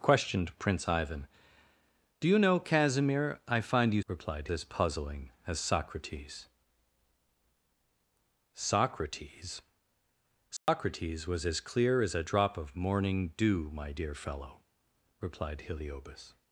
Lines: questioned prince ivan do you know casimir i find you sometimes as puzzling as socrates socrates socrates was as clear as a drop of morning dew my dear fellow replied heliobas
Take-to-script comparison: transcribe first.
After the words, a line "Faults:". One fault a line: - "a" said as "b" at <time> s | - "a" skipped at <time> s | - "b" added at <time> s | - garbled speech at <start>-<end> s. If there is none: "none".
questioned prince ivan do you know casimir i find you replied as puzzling as socrates socrates socrates was as clear as a drop of morning dew my dear fellow replied heliobas
Faults:
- "sometimes" said as "replied" at 4.1 s